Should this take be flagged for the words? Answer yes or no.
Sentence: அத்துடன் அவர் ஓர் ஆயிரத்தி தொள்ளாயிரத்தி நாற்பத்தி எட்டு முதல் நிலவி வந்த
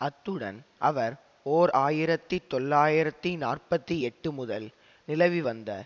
no